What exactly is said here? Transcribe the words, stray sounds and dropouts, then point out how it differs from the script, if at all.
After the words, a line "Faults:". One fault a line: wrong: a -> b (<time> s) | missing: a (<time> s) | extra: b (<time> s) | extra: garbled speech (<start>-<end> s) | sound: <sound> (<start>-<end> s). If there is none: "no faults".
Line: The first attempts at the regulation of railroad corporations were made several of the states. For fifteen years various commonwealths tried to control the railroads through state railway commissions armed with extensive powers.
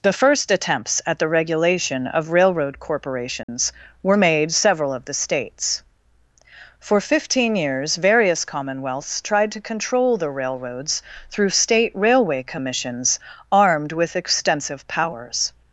The first attempts at the regulation of railroad corporations were made several of the states. For fifteen years various commonwealths tried to control the railroads through state railway commissions armed with extensive powers.
Faults:
sound: dropout (3.4-3.5 s)